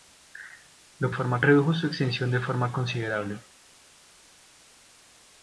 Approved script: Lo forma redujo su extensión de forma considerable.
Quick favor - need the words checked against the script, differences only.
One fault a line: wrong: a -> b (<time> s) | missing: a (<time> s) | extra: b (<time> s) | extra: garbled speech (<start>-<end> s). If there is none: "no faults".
no faults